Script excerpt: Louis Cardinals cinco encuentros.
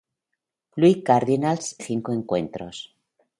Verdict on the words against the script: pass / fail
pass